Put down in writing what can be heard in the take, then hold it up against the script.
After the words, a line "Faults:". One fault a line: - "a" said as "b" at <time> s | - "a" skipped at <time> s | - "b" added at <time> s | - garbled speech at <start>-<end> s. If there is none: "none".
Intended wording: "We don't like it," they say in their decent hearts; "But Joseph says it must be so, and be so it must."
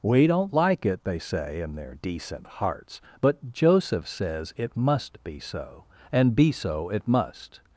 "We don't like it," they say in their decent hearts; "But Joseph says it must be so, and be so it must."
Faults:
none